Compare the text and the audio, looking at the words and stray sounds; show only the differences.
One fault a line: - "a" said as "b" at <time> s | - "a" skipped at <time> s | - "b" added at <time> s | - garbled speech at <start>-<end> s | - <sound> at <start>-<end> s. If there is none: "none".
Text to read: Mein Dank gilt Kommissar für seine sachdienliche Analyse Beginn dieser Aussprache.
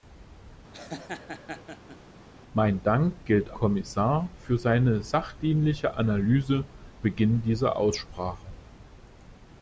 - laugh at 0.7-2.0 s